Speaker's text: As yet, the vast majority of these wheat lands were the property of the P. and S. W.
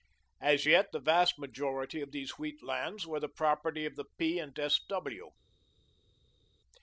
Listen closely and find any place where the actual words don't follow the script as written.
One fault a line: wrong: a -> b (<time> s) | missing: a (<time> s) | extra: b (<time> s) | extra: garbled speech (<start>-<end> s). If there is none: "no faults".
no faults